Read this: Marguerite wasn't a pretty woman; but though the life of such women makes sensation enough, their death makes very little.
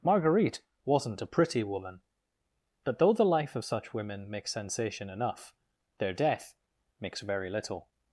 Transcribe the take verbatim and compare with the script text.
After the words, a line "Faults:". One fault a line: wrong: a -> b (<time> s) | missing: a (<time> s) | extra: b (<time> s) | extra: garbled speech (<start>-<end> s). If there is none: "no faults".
Marguerite wasn't a pretty woman; but though the life of such women makes sensation enough, their death makes very little.
Faults:
no faults